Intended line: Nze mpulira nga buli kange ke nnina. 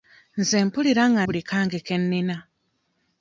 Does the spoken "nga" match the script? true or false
true